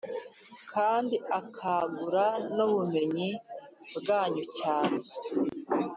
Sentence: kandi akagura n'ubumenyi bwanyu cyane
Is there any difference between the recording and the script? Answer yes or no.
no